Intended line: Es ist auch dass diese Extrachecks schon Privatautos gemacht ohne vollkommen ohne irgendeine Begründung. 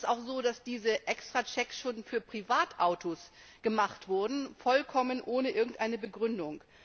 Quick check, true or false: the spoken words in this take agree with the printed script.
false